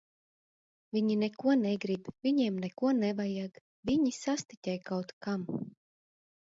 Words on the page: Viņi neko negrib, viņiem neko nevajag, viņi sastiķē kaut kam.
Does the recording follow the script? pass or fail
pass